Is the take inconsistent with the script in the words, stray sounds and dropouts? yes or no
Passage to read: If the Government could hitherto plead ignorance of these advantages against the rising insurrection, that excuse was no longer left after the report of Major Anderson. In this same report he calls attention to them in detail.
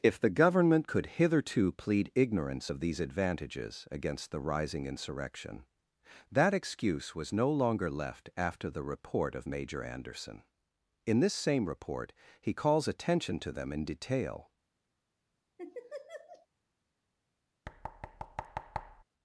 yes